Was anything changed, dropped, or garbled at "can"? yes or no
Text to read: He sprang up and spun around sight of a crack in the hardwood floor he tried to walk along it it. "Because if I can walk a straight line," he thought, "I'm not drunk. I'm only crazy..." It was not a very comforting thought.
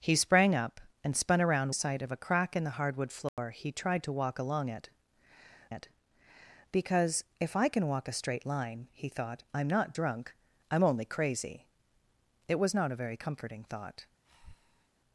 no